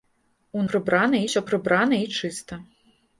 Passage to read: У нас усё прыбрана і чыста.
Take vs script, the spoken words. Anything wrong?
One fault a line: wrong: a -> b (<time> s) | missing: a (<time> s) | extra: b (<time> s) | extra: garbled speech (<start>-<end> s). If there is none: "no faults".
wrong: нас -> прыбрана (0.7 s)